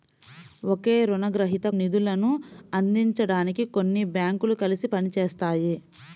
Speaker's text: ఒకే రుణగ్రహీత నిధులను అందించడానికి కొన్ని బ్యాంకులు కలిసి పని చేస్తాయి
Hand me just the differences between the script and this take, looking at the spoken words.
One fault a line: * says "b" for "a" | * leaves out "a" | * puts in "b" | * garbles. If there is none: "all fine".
all fine